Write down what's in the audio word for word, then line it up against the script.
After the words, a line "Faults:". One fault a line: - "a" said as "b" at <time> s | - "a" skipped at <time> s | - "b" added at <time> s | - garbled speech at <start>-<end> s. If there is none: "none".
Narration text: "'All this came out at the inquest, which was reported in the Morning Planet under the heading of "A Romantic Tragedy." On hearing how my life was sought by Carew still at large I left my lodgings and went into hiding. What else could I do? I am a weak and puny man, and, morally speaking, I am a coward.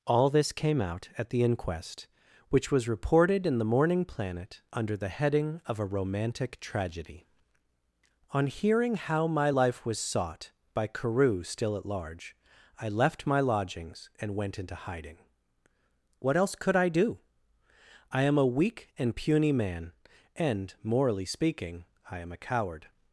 "'All this came out at the inquest, which was reported in the Morning Planet under the heading of "A Romantic Tragedy." On hearing how my life was sought by Carew still at large I left my lodgings and went into hiding. What else could I do? I am a weak and puny man, and, morally speaking, I am a coward.
Faults:
none